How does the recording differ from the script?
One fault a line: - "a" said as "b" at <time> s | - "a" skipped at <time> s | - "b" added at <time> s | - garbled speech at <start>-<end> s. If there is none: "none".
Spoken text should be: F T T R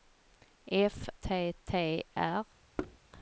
none